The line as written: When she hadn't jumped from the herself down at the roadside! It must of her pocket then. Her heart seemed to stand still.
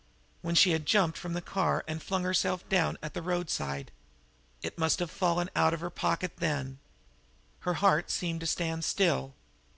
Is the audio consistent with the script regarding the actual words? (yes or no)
no